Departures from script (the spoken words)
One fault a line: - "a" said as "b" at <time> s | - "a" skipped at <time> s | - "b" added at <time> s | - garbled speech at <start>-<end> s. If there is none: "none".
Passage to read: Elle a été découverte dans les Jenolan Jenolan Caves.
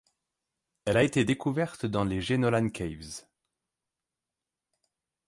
- "Jenolan" skipped at 2.7 s